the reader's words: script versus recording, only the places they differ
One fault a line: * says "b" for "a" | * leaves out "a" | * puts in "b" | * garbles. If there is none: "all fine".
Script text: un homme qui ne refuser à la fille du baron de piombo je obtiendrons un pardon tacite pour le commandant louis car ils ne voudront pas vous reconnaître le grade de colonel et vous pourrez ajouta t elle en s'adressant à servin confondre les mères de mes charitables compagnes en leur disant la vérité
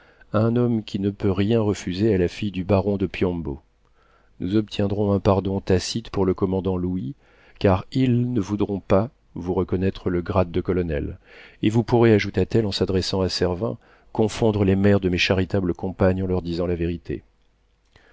* puts in "peut rien"
* says "nous" for "je"